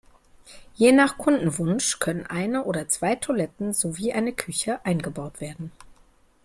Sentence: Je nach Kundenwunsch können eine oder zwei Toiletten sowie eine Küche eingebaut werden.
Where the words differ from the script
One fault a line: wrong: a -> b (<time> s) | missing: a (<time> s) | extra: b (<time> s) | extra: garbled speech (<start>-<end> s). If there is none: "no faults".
no faults